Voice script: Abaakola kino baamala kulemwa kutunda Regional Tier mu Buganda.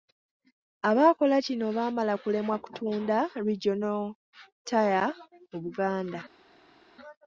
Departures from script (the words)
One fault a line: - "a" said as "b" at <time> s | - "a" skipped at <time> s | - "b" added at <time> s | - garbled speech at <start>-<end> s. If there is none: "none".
none